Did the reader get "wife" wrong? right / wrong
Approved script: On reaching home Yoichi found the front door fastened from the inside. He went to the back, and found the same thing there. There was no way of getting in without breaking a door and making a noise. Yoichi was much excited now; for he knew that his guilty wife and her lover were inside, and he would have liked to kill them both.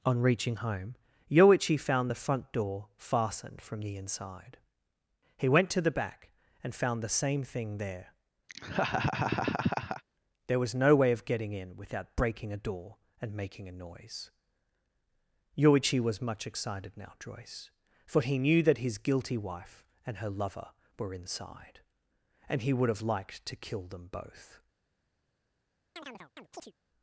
right